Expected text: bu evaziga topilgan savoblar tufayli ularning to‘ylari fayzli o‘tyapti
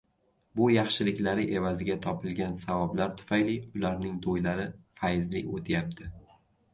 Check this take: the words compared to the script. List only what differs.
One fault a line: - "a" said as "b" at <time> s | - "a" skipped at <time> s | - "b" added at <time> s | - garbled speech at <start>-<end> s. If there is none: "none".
- "yaxshiliklari" added at 0.8 s